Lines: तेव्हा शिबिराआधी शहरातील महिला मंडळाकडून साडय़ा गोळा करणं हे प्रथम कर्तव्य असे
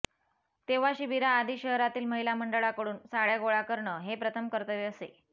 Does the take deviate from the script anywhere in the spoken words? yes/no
no